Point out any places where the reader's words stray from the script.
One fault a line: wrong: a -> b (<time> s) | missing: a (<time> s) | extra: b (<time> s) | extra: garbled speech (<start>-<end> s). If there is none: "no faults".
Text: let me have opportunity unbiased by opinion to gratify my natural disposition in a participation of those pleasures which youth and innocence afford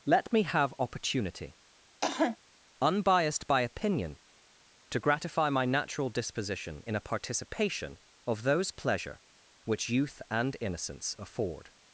wrong: pleasures -> pleasure (8.7 s)